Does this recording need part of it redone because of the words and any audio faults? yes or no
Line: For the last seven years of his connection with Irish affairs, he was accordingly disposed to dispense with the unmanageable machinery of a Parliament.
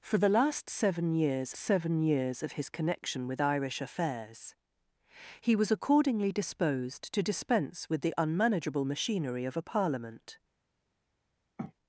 yes